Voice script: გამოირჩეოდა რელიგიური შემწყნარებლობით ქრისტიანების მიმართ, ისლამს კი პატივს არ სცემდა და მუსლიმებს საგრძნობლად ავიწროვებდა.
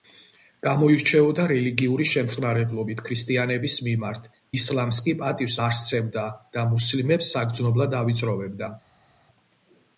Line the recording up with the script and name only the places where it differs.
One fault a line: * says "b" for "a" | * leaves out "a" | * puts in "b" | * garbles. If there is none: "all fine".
all fine